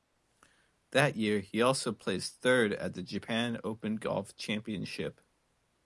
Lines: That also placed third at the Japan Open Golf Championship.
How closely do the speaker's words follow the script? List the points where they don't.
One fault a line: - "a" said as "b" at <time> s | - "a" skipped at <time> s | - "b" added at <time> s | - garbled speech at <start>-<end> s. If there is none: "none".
- "year he" added at 1.1 s